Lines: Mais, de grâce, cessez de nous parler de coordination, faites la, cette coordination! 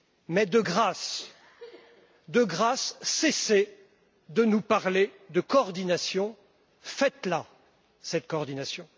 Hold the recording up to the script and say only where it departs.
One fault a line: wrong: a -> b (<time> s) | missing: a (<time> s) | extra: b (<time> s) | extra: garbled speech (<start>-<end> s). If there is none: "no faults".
no faults